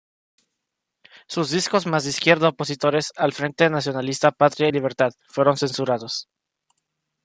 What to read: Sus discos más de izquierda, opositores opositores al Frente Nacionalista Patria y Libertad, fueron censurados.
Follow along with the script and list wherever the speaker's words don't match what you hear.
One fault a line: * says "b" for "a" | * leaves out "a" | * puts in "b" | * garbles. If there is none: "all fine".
* leaves out "opositores"